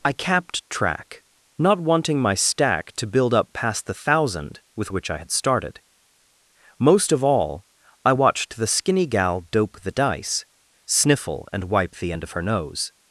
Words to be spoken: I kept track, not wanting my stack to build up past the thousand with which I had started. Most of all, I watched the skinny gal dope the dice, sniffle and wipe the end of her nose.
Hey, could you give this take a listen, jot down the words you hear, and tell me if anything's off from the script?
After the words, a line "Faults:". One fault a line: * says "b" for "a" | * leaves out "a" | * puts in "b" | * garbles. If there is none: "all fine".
I capped track, not wanting my stack to build up past the thousand with which I had started. Most of all, I watched the skinny gal dope the dice, sniffle and wipe the end of her nose.
Faults:
* says "capped" for "kept"